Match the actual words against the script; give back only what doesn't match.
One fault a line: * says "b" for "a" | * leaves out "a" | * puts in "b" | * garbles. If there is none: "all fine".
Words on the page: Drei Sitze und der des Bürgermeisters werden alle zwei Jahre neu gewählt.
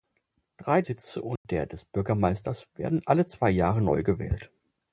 all fine